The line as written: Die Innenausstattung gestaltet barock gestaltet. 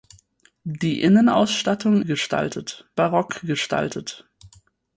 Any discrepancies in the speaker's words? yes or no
no